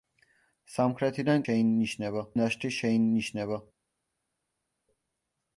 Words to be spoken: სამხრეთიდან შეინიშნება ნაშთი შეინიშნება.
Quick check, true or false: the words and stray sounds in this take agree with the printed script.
true